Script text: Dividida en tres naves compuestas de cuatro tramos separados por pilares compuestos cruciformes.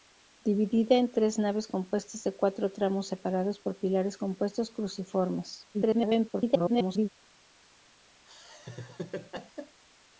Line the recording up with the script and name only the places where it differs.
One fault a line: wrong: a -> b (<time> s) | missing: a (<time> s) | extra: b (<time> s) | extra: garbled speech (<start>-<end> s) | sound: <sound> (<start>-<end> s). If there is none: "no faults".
extra: garbled speech (5.7-7.1 s)
sound: laugh (8.2-9.8 s)